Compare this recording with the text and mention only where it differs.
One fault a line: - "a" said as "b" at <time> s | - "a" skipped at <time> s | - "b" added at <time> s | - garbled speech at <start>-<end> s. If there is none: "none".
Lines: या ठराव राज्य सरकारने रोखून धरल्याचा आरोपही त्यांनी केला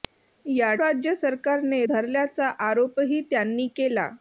- "ठराव" skipped at 0.7 s
- "रोखून" skipped at 1.8 s